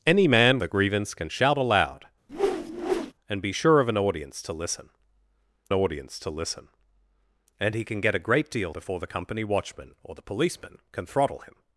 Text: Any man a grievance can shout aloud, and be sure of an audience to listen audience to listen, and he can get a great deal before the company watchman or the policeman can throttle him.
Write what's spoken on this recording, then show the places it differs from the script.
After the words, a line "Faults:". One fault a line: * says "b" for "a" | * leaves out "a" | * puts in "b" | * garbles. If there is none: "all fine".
Any man a grievance can shout aloud, and be sure of an audience to listen audience to listen, and he can get a great deal before the company watchman or the policeman can throttle him.
Faults:
all fine